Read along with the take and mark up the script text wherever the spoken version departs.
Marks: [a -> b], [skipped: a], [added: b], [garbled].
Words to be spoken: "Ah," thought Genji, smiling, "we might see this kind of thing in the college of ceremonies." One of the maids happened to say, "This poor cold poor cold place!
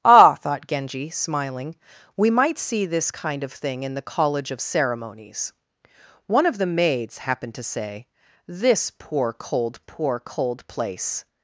"Ah," thought Genji, smiling, "we might see this kind of thing in the college of ceremonies." One of the maids happened to say, "This poor cold poor cold place!